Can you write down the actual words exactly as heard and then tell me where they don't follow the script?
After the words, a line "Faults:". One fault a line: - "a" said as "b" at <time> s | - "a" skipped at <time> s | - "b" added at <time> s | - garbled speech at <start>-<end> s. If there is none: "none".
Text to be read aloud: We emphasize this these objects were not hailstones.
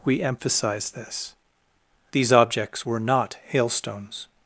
We emphasize this these objects were not hailstones.
Faults:
none